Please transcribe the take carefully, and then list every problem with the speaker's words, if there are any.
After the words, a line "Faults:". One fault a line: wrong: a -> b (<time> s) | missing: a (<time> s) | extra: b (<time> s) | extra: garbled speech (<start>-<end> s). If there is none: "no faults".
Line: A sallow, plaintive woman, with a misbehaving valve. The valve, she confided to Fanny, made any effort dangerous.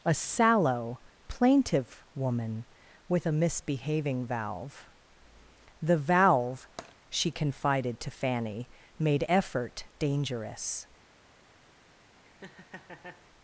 A sallow, plaintive woman, with a misbehaving valve. The valve, she confided to Fanny, made effort dangerous.
Faults:
missing: any (9.2 s)